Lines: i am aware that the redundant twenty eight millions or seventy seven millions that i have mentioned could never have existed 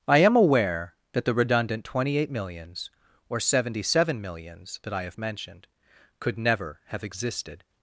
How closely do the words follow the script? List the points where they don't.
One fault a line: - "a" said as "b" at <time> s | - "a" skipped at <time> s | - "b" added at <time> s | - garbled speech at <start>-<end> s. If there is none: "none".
none